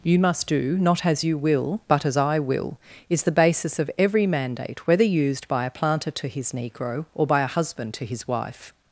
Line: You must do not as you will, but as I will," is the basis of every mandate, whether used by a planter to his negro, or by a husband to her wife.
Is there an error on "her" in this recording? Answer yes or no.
yes